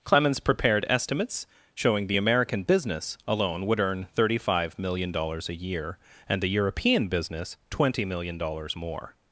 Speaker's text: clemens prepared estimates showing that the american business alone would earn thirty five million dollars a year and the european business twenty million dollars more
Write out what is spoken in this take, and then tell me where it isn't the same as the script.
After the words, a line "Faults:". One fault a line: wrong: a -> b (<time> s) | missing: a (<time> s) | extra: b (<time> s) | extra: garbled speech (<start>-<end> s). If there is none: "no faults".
clemens prepared estimates showing the american business alone would earn thirty five million dollars a year and the european business twenty million dollars more
Faults:
missing: that (2.1 s)